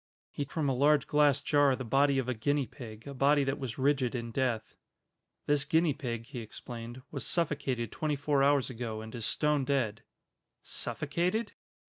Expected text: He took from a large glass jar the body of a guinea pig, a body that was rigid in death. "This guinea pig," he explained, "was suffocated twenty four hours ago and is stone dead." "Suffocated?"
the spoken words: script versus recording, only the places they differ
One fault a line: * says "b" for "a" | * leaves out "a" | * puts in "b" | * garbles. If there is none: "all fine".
* leaves out "took"